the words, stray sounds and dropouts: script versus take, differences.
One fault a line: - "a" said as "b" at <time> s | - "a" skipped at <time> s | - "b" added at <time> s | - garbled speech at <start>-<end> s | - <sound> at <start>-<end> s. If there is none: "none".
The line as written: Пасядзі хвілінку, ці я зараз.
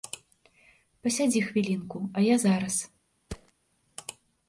- "ці" said as "а" at 2.1 s
- thud at 3.3-3.5 s